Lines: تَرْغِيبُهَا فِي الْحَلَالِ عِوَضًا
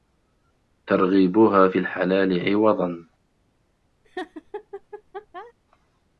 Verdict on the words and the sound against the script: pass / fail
fail